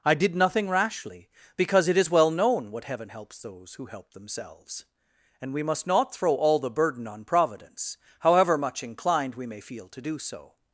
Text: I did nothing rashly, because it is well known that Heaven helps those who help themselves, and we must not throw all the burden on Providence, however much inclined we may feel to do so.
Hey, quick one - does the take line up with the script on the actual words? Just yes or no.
no